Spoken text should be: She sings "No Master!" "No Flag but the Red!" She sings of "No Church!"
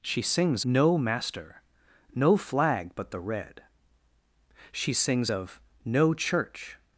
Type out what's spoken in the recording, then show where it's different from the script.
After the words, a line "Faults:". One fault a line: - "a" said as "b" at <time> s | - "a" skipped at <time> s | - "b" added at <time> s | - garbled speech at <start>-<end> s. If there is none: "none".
She sings "No Master!" "No Flag but the Red!" She sings of "No Church!"
Faults:
none